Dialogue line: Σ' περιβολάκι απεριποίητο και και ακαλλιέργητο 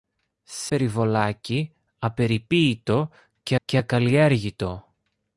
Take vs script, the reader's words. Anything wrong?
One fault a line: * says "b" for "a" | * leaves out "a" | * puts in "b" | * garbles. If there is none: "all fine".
all fine